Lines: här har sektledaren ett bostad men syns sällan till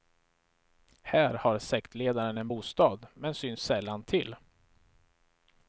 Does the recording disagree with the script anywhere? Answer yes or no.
yes